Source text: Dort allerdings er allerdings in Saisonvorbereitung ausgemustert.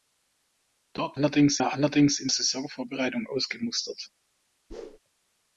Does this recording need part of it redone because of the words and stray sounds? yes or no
yes